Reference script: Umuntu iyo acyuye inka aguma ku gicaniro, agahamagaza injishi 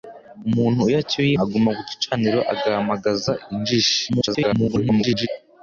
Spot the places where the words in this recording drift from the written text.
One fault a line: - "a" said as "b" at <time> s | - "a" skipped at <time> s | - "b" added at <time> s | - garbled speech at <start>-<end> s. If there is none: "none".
- "inka" skipped at 1.3 s
- garbled speech at 4.1-5.3 s